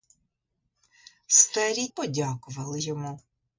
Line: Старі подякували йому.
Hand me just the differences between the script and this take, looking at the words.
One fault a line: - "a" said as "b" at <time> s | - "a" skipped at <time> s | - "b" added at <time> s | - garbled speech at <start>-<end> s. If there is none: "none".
none